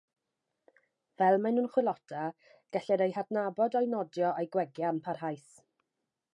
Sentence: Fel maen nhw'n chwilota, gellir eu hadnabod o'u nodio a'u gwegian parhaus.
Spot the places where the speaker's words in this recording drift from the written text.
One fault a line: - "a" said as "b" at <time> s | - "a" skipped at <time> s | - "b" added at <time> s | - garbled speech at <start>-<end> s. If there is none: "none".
none